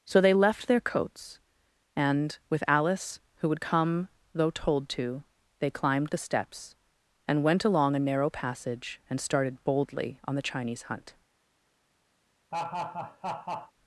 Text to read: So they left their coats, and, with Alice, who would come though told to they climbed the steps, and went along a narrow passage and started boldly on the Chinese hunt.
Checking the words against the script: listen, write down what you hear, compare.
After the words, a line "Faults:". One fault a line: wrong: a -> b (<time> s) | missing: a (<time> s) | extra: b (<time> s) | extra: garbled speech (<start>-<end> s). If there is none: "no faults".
So they left their coats, and, with Alice, who would come though told to they climbed the steps, and went along a narrow passage and started boldly on the Chinese hunt.
Faults:
no faults